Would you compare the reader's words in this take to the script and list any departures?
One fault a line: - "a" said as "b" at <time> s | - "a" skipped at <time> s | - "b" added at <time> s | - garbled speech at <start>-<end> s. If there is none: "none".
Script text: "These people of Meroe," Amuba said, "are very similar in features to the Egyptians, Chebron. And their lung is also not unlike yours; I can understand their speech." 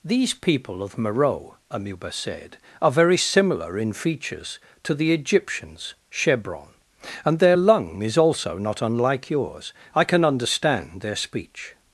none